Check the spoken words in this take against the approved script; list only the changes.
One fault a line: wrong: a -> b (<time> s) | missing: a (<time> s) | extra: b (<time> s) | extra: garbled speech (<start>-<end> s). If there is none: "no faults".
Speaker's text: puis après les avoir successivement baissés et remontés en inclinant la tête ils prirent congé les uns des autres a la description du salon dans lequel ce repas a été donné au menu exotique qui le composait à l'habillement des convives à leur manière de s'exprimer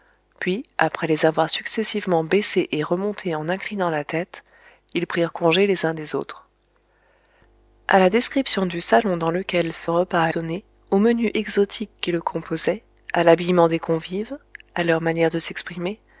missing: été (10.3 s)